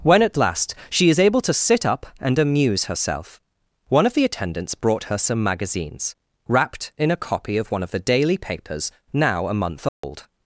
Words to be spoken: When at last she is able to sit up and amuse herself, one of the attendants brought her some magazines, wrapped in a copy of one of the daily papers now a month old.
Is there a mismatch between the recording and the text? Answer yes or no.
no